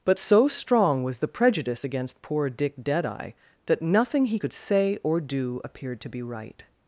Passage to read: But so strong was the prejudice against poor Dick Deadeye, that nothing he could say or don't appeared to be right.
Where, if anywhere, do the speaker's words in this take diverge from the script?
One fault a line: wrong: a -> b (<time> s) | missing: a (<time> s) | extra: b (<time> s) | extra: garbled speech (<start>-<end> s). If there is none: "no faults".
wrong: don't -> do (5.2 s)